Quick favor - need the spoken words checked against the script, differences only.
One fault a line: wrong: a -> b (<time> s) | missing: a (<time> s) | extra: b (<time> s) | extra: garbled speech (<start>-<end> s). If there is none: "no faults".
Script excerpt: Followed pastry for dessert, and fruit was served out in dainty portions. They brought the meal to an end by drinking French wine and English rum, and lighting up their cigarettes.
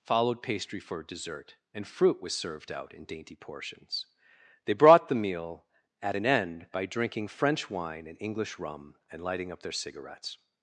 wrong: to -> at (6.0 s)